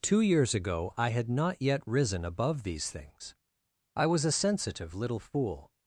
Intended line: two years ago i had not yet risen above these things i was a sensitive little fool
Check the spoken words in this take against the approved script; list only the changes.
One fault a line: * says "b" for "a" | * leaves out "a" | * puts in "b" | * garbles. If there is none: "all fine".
all fine